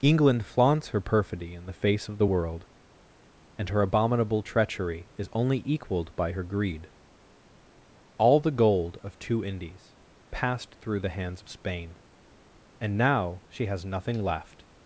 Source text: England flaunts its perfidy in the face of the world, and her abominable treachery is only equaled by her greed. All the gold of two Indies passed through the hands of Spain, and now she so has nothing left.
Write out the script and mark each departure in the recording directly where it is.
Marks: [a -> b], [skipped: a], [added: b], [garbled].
England flaunts [its -> her] perfidy in the face of the world, and her abominable treachery is only equaled by her greed. All the gold of two Indies passed through the hands of Spain, and now she [skipped: so] has nothing left.